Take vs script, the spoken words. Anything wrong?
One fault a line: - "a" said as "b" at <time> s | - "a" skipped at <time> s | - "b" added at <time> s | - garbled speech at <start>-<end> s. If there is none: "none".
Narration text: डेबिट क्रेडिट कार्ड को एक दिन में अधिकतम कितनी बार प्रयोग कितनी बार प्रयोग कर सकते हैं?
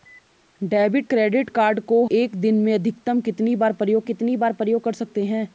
none